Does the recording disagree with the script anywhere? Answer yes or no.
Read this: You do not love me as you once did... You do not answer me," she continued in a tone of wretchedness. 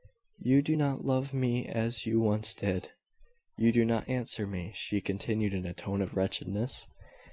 no